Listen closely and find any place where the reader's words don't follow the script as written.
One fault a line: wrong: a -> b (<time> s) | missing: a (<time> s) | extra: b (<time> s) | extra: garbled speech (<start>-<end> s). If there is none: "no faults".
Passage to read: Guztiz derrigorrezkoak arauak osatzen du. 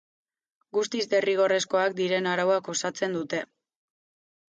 extra: diren (2.0 s)
wrong: du -> dute (3.2 s)